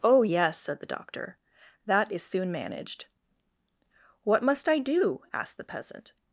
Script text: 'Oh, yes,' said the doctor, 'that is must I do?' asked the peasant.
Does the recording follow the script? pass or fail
fail